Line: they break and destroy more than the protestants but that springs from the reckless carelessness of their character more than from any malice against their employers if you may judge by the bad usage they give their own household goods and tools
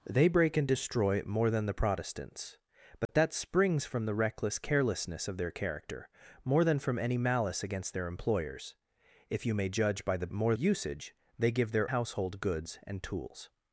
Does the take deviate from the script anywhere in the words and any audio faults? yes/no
yes